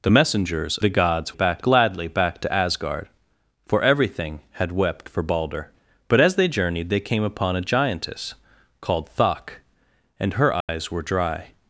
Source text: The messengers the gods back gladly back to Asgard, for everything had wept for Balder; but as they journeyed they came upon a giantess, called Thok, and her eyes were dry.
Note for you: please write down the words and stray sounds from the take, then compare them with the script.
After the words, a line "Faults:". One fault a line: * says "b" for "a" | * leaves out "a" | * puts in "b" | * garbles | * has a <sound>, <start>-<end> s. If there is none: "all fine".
The messengers the gods back gladly back to Asgard, for everything had wept for Balder; but as they journeyed they came upon a giantess, called Thok, and her eyes were dry.
Faults:
* has a dropout, 10.6-10.7 s